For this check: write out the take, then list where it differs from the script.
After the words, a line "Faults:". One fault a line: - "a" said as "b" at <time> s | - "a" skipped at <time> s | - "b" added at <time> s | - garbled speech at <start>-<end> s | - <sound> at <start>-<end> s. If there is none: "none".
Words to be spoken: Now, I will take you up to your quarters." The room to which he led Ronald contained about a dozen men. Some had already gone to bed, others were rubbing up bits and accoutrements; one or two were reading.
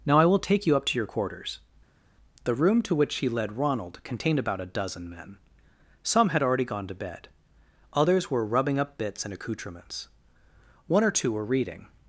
Now, I will take you up to your quarters." The room to which he led Ronald contained about a dozen men. Some had already gone to bed, others were rubbing up bits and accoutrements; one or two were reading.
Faults:
none